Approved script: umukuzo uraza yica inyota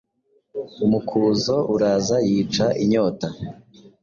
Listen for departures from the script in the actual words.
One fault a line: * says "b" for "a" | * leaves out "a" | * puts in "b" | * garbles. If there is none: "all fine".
all fine